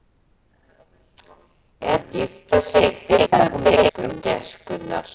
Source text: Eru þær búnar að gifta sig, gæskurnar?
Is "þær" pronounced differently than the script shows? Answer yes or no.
yes